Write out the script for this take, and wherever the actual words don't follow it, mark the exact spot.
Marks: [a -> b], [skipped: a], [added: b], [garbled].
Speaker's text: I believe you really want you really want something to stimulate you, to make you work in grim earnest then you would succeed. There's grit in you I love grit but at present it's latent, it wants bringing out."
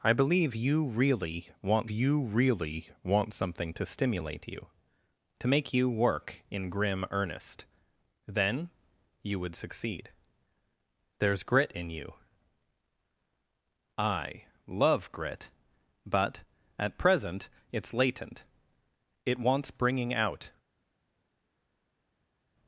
I believe you really want you really want something to stimulate you, to make you work in grim earnest then you would succeed. There's grit in you I love grit but at present it's latent, it wants bringing out."